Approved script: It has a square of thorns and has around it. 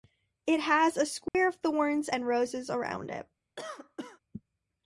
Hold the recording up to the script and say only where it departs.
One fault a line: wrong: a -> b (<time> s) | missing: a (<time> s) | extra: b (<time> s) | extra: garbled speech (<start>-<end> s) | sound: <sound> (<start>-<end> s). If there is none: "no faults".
sound: dropout (1.3-1.3 s)
wrong: has -> roses (2.2 s)
sound: cough (3.6-4.2 s)